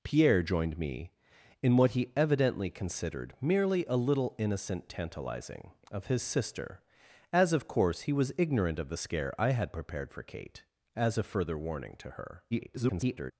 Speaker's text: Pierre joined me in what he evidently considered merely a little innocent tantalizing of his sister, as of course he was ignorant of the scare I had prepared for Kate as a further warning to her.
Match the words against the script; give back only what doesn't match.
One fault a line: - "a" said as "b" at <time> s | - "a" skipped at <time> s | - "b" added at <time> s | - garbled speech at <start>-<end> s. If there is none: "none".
- garbled speech at 12.5-13.3 s